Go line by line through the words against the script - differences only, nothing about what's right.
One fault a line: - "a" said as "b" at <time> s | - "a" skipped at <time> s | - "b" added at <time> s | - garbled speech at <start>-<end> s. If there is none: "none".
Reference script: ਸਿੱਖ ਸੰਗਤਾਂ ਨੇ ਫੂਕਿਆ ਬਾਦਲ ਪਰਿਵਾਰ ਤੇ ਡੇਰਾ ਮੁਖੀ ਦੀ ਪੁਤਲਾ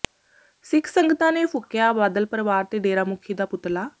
- "ਦੀ" said as "ਦਾ" at 3.3 s